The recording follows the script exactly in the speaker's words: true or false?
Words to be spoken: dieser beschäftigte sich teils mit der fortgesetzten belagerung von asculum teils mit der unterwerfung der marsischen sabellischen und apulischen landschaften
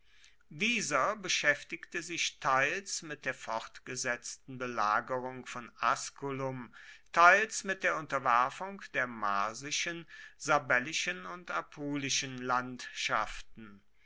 true